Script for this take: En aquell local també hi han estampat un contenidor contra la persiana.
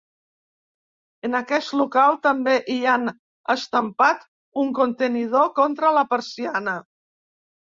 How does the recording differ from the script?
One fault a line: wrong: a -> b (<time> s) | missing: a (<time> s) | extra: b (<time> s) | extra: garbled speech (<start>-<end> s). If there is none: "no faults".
wrong: aquell -> aquest (1.4 s)